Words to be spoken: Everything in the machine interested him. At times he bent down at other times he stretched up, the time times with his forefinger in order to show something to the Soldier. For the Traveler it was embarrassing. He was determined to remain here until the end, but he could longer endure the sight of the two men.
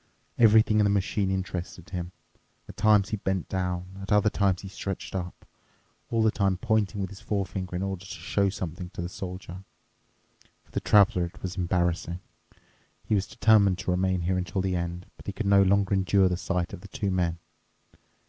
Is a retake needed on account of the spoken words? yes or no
yes